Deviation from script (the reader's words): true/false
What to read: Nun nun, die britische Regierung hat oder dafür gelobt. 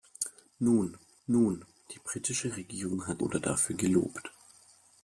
false